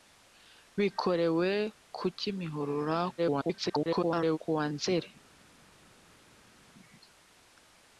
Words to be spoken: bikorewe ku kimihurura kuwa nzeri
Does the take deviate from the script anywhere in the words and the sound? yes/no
yes